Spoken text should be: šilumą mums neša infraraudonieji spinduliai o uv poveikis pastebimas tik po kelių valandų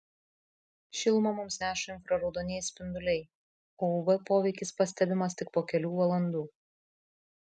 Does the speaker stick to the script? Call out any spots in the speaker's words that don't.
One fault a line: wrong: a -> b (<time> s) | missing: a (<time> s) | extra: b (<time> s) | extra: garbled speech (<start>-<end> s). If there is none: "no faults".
no faults